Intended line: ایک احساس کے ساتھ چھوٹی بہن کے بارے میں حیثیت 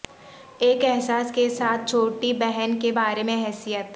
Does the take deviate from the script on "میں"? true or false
false